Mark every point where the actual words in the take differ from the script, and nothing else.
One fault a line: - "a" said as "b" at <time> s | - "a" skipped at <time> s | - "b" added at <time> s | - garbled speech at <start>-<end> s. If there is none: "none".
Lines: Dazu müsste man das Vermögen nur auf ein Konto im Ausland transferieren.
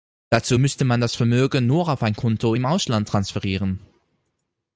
none